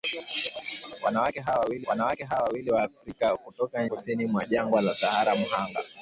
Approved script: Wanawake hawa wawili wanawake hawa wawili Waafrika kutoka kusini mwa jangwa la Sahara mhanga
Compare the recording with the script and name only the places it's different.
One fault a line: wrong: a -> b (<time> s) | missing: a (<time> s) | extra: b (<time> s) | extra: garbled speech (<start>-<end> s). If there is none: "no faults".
no faults